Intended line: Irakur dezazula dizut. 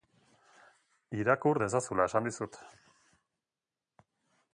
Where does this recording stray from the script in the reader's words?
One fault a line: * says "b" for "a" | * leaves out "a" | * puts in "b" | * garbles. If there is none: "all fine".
* puts in "esan"